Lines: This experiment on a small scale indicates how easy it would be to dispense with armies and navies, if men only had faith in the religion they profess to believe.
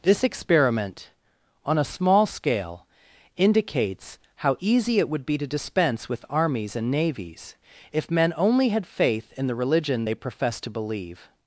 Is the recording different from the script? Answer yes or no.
no